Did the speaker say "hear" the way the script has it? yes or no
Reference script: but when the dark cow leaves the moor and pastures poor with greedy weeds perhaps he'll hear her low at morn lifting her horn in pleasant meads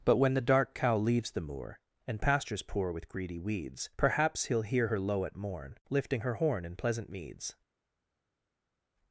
yes